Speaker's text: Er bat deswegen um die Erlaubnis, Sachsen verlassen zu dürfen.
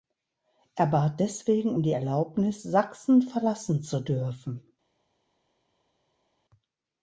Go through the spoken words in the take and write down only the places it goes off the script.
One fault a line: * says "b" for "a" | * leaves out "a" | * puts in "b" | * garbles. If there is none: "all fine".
all fine